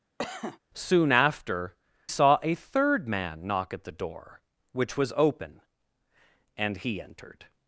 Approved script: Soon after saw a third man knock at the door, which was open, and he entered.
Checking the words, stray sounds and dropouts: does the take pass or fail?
fail